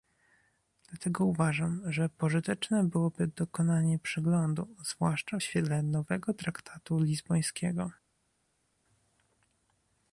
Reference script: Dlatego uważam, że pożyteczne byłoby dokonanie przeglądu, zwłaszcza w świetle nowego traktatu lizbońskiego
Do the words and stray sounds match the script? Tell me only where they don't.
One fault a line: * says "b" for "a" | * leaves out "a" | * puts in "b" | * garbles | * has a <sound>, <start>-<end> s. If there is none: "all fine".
all fine